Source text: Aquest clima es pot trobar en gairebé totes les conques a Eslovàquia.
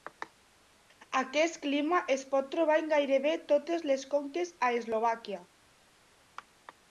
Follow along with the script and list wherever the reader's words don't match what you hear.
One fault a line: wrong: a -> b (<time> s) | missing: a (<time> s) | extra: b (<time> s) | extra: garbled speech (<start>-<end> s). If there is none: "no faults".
no faults